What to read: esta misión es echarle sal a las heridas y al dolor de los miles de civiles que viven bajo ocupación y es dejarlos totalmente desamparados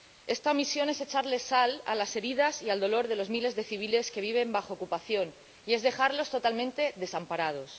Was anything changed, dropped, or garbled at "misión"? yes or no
no